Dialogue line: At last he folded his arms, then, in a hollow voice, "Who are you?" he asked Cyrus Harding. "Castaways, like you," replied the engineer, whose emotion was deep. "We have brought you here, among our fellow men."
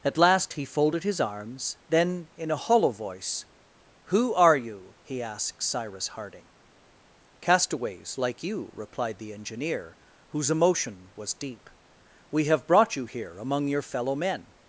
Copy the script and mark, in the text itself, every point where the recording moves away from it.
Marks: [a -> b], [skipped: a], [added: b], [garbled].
At last he folded his arms, then, in a hollow voice, "Who are you?" he asked Cyrus Harding. "Castaways, like you," replied the engineer, whose emotion was deep. "We have brought you here, among [our -> your] fellow men."